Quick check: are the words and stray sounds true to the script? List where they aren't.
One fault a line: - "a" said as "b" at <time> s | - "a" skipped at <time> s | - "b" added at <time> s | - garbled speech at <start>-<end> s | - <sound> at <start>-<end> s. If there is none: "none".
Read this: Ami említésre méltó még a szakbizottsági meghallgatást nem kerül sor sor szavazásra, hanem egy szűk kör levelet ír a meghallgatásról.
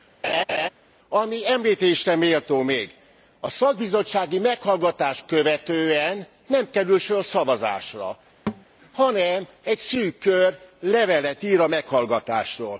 - laugh at 0.2-0.7 s
- "követően" added at 5.3 s
- "sor" skipped at 7.2 s
- thud at 8.5-8.7 s